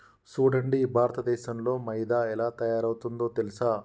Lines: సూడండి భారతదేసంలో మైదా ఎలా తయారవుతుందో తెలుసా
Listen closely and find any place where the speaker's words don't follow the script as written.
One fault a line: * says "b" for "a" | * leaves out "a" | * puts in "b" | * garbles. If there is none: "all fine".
all fine